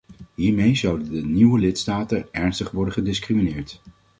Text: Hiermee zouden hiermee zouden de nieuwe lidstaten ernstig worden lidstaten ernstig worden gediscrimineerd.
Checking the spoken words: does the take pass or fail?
fail